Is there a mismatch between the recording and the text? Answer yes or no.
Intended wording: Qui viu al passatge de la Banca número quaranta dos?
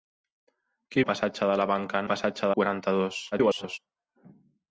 yes